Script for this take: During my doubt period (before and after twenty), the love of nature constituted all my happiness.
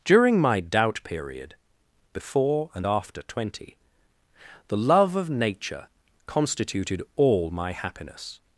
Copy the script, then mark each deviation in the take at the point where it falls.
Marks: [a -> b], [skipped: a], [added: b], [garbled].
During my doubt period (before and after twenty), the love of nature constituted all my happiness.